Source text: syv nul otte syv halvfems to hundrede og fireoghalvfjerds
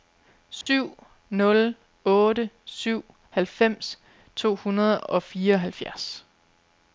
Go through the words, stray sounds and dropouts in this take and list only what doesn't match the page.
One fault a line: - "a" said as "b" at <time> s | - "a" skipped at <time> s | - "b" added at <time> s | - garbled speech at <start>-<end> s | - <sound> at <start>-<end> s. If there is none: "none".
- dropout at 0.6-0.7 s